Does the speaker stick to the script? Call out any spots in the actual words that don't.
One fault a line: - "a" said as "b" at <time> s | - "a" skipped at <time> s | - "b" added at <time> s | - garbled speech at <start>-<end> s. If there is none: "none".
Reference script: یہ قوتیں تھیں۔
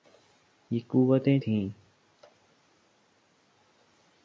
none